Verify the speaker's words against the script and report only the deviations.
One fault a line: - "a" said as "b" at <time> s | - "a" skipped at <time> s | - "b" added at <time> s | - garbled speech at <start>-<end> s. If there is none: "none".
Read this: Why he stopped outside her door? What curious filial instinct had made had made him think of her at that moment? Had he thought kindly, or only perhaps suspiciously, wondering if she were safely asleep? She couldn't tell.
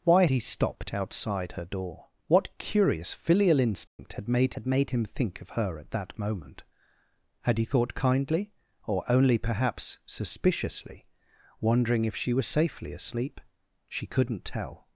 none